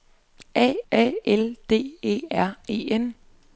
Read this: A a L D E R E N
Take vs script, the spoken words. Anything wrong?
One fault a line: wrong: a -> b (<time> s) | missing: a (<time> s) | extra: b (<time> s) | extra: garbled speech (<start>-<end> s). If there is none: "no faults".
no faults